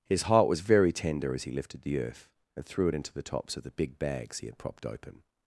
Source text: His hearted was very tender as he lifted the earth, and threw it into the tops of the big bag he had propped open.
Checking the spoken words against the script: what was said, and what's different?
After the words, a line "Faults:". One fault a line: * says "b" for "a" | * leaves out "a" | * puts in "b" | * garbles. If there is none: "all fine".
His heart was very tender as he lifted the earth, and threw it into the tops of the big bags he had propped open.
Faults:
* says "heart" for "hearted"
* says "bags" for "bag"